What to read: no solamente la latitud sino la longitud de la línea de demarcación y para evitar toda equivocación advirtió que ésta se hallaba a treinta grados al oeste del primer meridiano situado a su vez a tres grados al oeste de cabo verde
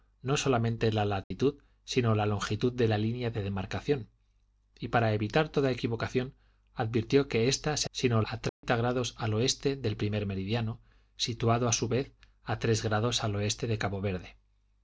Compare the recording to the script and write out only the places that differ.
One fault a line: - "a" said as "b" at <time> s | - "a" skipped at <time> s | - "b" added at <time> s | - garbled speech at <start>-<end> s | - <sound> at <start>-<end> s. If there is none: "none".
- dropout at 1.2-1.3 s
- "hallaba" said as "sino" at 7.9 s
- dropout at 8.5-8.6 s